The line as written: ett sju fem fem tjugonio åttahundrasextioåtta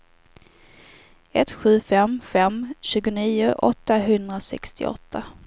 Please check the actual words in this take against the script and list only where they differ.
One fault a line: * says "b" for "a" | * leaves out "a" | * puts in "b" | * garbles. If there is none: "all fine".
all fine